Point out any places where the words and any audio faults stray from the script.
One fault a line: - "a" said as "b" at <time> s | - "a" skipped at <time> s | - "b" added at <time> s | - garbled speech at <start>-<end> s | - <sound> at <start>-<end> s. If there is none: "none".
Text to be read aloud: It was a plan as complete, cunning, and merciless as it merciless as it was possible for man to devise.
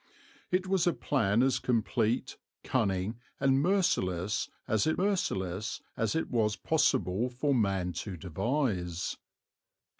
none